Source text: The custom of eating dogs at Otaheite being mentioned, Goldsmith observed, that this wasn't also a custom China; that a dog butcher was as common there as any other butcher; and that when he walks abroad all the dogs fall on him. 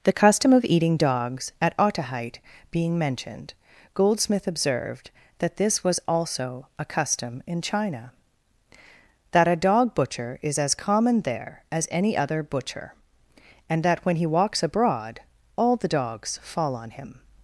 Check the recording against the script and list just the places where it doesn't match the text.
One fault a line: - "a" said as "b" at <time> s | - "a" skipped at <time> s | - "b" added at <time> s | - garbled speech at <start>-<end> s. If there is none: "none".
- "wasn't" said as "was" at 5.8 s
- "in" added at 7.5 s
- "was" said as "is" at 10.4 s